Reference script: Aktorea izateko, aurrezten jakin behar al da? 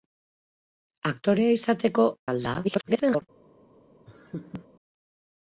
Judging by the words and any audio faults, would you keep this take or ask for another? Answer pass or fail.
fail